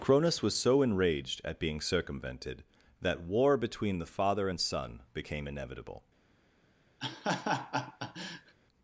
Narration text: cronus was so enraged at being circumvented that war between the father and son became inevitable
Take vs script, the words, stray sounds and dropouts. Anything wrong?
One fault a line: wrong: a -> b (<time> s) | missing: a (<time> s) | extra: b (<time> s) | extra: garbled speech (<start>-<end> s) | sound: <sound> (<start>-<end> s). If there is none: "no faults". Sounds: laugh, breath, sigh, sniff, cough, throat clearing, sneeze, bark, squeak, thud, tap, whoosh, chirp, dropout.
sound: laugh (7.0-8.6 s)